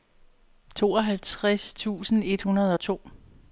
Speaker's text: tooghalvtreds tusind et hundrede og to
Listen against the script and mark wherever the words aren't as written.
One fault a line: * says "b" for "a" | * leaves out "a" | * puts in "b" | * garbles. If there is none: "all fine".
all fine